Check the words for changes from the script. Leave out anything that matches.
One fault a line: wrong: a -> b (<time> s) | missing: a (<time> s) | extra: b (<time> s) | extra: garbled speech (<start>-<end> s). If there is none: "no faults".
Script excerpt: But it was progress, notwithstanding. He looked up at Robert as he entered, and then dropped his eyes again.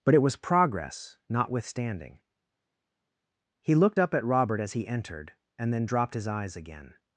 no faults